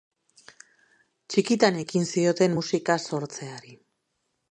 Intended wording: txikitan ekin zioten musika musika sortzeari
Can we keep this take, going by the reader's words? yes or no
no